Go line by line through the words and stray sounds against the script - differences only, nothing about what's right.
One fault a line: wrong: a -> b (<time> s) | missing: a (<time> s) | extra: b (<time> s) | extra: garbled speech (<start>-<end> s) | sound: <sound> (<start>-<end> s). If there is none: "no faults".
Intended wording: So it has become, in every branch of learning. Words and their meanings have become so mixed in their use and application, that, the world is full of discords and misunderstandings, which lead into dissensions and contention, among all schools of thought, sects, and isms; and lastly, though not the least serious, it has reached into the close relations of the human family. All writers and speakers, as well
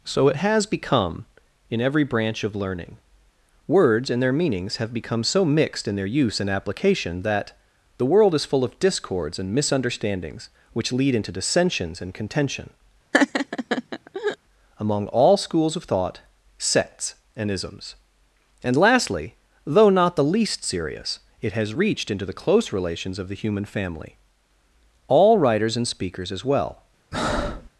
sound: laugh (13.1-14.4 s)
sound: breath (27.1-27.7 s)